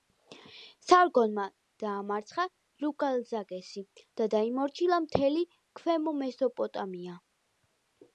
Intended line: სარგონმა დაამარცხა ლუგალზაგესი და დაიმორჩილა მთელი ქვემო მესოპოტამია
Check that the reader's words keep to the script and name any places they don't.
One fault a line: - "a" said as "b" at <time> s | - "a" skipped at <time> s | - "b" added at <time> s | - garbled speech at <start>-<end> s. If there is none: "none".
none